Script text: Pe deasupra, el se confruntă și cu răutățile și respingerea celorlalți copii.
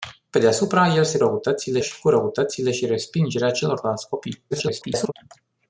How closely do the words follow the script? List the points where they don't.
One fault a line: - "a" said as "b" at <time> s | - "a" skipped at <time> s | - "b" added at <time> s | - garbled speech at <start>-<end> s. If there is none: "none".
- "confruntă" said as "răutățile" at 1.2 s
- garbled speech at 4.5-5.1 s